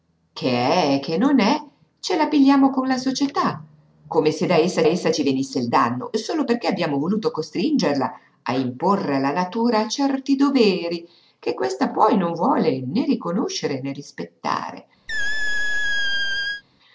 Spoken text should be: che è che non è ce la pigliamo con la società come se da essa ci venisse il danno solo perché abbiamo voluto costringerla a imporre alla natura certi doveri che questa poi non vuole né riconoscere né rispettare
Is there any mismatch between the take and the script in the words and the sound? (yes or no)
yes